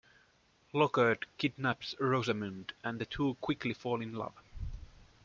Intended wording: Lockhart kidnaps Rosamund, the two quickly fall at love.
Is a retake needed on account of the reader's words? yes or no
yes